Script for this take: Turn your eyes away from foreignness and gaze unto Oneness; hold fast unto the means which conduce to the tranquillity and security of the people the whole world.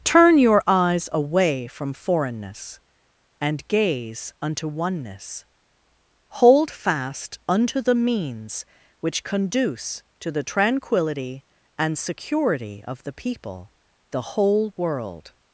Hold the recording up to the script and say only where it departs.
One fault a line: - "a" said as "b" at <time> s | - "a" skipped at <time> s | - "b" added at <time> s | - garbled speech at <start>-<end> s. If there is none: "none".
none